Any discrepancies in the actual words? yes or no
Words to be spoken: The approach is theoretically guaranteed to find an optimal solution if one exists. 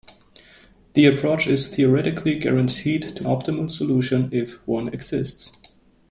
yes